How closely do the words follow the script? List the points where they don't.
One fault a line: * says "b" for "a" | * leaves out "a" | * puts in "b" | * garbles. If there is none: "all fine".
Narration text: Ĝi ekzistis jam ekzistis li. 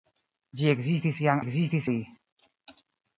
all fine